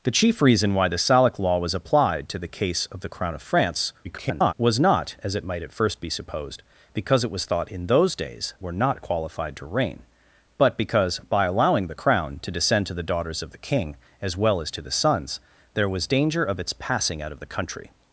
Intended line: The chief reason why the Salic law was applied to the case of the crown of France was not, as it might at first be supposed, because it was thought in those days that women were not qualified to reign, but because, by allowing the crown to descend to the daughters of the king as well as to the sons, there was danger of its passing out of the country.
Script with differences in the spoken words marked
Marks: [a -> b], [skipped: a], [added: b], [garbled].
The chief reason why the Salic law was applied to the case of the crown of France [garbled] was not, as it might at first be supposed, because it was thought in those days [skipped: that women] were not qualified to reign, but because, by allowing the crown to descend to the daughters of the king as well as to the sons, there was danger of its passing out of the country.